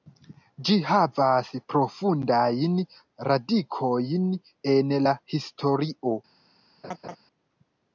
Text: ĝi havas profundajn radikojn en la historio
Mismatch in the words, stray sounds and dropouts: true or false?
true